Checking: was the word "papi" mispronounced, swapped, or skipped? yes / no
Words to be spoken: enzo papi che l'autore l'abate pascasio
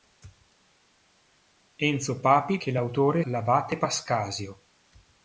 no